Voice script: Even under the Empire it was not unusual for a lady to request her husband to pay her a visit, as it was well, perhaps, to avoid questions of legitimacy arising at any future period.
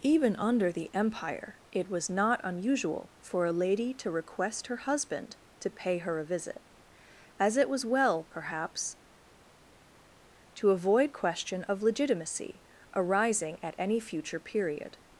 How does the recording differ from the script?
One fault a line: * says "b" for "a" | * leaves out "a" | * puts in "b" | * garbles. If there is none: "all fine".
* says "question" for "questions"